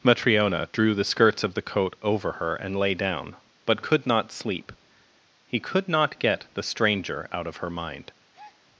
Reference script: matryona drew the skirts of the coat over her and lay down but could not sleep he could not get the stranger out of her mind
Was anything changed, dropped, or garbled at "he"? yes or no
no